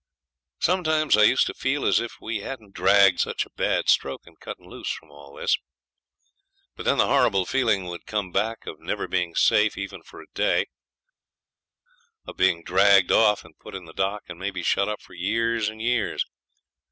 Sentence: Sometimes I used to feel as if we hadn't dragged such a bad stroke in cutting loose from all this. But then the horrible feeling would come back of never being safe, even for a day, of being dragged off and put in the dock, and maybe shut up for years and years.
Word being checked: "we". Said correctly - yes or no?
yes